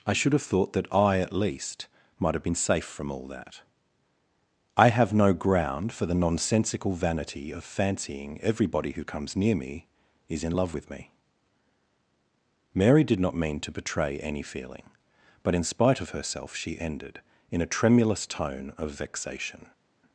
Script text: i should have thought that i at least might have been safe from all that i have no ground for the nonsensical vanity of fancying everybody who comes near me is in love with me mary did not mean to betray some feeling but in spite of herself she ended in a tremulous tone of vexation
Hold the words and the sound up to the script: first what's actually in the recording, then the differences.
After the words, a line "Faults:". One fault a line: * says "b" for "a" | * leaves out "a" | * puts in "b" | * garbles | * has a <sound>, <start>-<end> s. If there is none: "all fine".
i should have thought that i at least might have been safe from all that i have no ground for the nonsensical vanity of fancying everybody who comes near me is in love with me mary did not mean to betray any feeling but in spite of herself she ended in a tremulous tone of vexation
Faults:
* says "any" for "some"